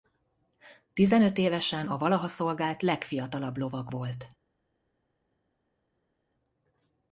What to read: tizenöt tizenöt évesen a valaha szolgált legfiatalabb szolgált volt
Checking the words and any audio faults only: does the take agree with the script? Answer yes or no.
no